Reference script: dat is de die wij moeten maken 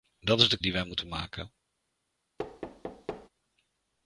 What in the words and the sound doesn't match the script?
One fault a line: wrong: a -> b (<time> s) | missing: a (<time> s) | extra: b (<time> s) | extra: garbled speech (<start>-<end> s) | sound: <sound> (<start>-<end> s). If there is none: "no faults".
sound: thud (2.4-3.3 s)